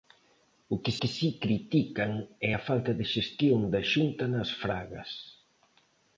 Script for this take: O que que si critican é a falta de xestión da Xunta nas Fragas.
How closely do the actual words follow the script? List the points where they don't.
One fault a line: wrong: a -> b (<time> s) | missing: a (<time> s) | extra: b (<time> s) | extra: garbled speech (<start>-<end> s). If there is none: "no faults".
no faults